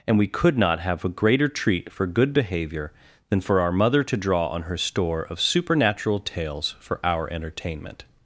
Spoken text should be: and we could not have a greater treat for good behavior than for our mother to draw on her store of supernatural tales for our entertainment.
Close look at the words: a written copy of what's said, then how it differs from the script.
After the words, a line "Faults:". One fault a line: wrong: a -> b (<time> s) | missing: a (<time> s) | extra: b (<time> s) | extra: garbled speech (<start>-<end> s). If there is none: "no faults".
and we could not have a greater treat for good behavior than for our mother to draw on her store of supernatural tales for our entertainment.
Faults:
no faults